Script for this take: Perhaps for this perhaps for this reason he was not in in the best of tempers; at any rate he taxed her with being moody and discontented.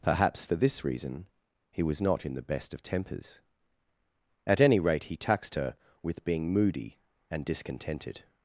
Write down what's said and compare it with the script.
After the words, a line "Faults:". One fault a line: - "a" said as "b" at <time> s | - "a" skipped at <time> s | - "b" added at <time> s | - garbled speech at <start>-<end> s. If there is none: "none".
Perhaps for this reason he was not in the best of tempers; at any rate he taxed her with being moody and discontented.
Faults:
- "perhaps for this" skipped at 0.8 s
- "in" skipped at 2.3 s